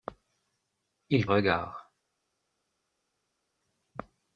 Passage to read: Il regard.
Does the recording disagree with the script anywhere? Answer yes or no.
no